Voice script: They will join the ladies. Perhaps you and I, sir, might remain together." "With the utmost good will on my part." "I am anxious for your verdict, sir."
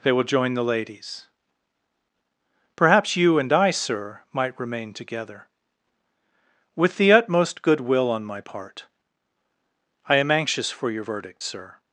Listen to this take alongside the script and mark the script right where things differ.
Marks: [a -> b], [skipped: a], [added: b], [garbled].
They will join the ladies. Perhaps you and I, sir, might remain together." "With the utmost good will on my part." "I am anxious for your verdict, sir."